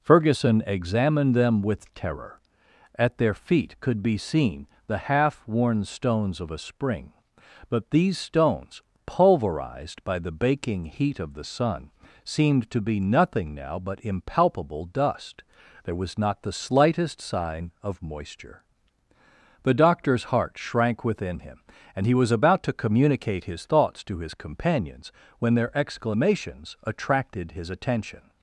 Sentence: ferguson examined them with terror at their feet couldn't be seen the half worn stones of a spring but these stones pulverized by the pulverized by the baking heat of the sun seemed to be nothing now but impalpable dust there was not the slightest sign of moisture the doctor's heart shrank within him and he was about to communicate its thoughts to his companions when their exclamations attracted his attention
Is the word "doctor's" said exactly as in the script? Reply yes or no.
yes